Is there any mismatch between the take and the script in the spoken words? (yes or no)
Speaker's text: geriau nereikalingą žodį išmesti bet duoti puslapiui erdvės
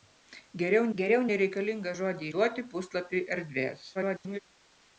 yes